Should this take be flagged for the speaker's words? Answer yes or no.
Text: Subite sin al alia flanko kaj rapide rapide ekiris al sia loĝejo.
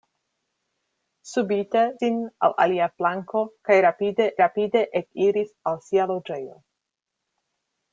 no